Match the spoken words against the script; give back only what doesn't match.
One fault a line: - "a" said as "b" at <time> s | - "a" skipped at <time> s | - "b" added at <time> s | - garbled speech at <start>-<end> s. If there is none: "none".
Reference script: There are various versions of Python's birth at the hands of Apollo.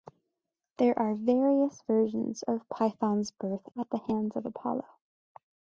none